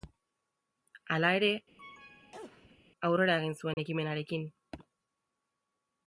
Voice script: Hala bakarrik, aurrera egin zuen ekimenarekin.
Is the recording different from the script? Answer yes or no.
yes